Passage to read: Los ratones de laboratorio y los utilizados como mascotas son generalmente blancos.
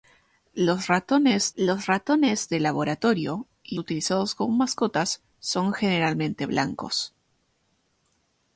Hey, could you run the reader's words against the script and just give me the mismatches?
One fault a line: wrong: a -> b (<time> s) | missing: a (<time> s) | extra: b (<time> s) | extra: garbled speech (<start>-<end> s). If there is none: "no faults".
extra: los ratones (1.6 s)
missing: los (3.8 s)